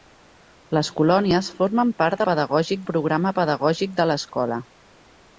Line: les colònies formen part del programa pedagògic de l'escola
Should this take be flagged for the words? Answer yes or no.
yes